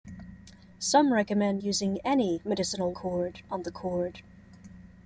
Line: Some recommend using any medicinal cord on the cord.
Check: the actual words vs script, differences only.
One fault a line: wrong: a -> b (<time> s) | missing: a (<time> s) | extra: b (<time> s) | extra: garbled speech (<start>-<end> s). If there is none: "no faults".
no faults